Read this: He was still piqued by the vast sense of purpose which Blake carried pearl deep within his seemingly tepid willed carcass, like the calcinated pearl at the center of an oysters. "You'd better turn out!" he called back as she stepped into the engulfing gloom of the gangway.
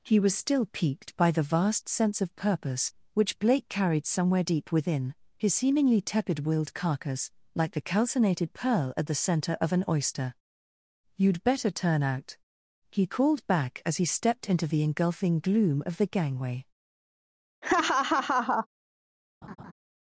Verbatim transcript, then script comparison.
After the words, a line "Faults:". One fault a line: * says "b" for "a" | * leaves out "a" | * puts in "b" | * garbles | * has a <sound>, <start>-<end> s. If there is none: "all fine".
He was still piqued by the vast sense of purpose which Blake carried somewhere deep within his seemingly tepid willed carcass, like the calcinated pearl at the center of an oyster. "You'd better turn out!" he called back as he stepped into the engulfing gloom of the gangway.
Faults:
* says "somewhere" for "pearl"
* says "oyster" for "oysters"
* says "he" for "she"
* has a laugh, 17.6-18.7 s
* has a laugh, 19.4-19.7 s